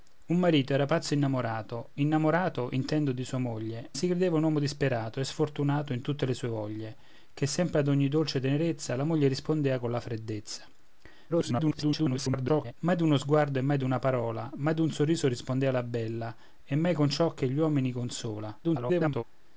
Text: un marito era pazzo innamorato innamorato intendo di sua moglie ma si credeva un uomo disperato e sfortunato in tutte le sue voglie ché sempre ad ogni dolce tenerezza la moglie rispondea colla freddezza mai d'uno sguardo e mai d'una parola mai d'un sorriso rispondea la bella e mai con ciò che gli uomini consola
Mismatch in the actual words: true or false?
true